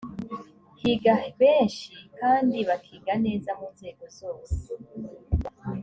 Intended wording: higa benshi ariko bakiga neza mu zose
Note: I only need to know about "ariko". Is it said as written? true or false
false